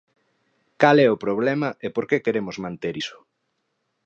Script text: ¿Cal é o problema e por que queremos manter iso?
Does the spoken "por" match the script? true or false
true